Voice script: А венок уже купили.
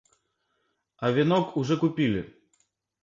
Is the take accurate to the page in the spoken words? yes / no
yes